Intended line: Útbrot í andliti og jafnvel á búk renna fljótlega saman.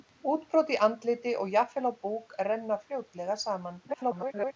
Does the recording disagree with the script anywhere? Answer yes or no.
yes